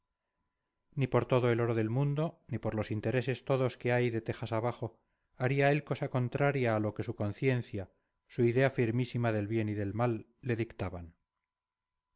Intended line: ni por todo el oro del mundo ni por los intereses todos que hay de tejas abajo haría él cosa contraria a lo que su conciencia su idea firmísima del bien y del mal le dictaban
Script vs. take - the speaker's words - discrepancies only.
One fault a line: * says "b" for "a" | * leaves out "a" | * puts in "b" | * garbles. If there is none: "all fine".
all fine